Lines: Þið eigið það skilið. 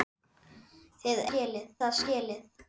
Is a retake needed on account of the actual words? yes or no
yes